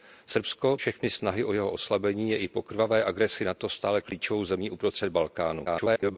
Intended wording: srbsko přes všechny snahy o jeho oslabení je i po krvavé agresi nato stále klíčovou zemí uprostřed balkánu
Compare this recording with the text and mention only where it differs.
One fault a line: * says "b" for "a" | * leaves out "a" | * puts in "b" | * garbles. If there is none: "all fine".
* leaves out "přes"
* garbles